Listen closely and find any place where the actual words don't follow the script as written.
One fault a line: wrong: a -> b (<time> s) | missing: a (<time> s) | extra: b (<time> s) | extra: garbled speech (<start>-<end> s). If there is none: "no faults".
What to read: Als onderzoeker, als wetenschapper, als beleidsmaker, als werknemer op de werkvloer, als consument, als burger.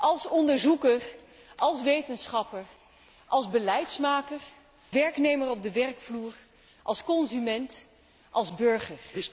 missing: als (4.4 s)